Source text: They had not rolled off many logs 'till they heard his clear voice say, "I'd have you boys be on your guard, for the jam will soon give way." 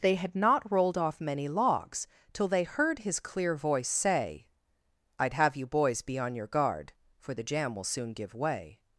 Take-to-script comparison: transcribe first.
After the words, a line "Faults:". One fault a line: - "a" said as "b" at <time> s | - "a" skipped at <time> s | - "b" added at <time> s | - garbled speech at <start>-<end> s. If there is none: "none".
They had not rolled off many logs 'till they heard his clear voice say, "I'd have you boys be on your guard, for the jam will soon give way."
Faults:
none